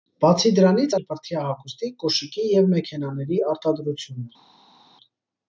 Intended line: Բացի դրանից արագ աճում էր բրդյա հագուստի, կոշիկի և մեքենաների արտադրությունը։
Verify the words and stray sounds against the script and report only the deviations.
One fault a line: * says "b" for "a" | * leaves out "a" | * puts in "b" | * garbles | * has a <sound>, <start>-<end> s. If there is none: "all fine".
* leaves out "արագ աճում"